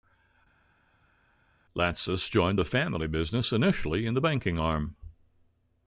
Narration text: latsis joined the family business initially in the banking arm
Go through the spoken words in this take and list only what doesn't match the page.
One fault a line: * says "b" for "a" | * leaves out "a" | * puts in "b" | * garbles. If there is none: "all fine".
all fine